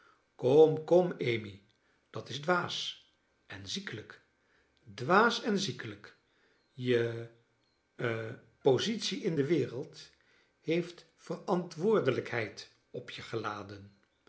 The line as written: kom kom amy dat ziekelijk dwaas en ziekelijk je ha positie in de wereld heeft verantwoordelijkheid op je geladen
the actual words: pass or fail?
fail